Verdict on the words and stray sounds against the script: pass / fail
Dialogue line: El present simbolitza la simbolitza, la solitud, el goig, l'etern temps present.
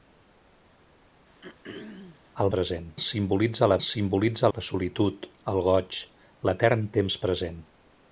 fail